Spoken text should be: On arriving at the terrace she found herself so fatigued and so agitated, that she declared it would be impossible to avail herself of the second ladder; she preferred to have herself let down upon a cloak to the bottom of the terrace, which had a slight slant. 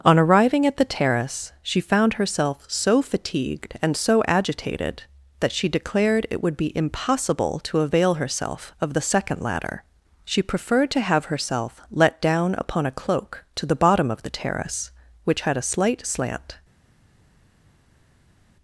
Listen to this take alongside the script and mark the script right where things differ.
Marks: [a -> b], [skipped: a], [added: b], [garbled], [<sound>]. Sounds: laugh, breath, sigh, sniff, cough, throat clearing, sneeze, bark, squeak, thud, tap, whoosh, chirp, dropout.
On arriving at the terrace she found herself so fatigued and so agitated, that she declared it would be impossible to avail herself of the second ladder; she preferred to have herself let down upon a cloak to the bottom of the terrace, which had a slight slant.